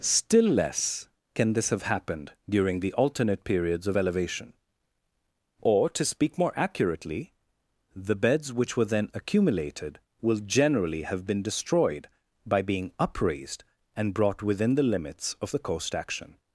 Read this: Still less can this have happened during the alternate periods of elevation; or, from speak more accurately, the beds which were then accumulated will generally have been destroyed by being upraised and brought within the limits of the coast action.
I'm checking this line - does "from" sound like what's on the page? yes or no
no